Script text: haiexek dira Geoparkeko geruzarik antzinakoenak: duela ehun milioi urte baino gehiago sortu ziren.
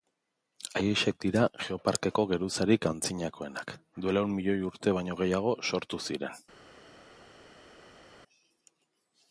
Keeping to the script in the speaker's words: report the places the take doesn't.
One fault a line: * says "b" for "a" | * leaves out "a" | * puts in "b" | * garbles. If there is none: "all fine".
all fine